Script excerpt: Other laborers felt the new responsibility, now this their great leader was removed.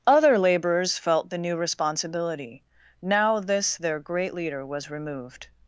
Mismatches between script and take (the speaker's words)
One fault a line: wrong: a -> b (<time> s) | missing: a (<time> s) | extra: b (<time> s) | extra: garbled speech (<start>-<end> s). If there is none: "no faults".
no faults